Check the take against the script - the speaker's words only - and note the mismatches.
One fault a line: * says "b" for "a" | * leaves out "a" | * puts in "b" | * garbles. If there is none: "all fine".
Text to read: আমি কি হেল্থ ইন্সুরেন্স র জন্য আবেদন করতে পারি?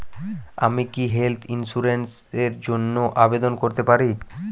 all fine